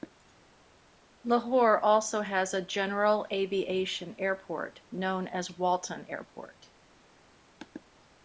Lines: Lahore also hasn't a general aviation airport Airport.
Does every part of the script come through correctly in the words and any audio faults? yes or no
no